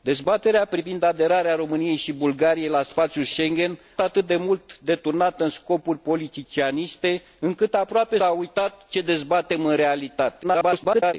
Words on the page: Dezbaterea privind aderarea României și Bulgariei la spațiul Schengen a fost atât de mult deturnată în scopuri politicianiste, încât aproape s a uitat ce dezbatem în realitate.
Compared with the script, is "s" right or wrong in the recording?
wrong